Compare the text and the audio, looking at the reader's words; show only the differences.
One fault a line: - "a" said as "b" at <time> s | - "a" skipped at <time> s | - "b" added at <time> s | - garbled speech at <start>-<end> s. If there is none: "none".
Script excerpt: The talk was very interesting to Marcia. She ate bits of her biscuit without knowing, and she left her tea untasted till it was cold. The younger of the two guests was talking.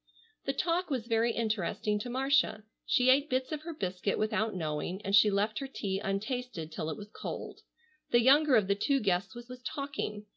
- "was" added at 9.5 s